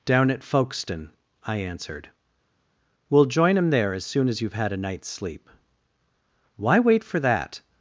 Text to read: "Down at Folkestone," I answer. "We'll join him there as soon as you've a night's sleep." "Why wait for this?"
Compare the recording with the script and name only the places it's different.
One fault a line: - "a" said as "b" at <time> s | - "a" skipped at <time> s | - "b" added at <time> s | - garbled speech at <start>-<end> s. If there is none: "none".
- "answer" said as "answered" at 1.6 s
- "had" added at 4.5 s
- "this" said as "that" at 7.2 s